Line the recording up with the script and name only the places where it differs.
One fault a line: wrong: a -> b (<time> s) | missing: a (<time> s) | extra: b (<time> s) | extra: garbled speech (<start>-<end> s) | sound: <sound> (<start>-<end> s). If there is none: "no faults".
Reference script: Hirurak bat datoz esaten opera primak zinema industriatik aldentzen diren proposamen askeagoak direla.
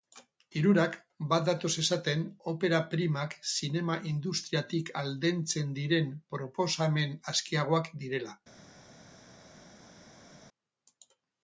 no faults